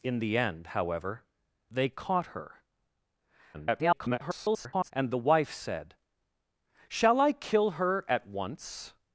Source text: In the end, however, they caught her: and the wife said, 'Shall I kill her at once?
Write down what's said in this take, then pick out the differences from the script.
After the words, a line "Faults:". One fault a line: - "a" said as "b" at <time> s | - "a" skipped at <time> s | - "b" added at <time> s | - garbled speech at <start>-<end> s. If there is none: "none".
In the end, however, they caught her: [garbled] and the wife said, 'Shall I kill her at once?
Faults:
- garbled speech at 3.5-4.9 s